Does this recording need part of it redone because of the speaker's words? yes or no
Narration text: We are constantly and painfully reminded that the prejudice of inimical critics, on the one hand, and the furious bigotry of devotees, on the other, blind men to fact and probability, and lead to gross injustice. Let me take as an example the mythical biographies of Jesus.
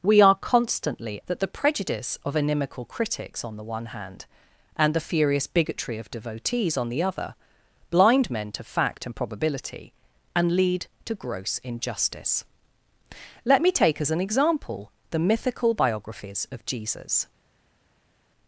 yes